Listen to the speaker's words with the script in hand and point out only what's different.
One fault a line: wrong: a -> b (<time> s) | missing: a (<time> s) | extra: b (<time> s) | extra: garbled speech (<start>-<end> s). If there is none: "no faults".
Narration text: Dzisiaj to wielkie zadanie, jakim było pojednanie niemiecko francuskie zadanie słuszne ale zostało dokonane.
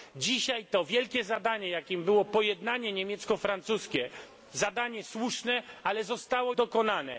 no faults